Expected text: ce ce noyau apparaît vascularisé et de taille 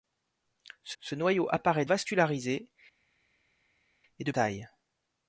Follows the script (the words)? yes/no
yes